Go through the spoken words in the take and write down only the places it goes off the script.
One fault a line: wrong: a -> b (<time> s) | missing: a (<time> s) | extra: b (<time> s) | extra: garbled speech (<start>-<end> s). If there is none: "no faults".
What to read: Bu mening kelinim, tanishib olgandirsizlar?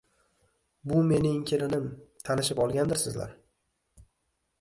no faults